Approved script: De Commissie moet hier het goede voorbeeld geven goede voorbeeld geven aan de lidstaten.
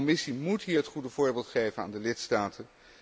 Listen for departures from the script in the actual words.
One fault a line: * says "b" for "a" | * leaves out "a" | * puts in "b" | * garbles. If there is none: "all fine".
* leaves out "goede voorbeeld geven"